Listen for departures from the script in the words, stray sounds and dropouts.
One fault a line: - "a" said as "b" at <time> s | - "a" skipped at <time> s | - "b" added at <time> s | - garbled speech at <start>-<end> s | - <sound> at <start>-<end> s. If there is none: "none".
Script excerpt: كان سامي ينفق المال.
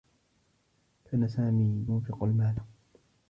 none